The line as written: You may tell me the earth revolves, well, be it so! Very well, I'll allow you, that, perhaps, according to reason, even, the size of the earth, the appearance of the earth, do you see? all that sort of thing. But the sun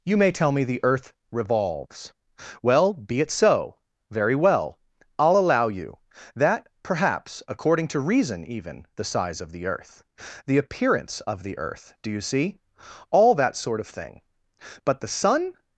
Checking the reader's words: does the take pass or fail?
pass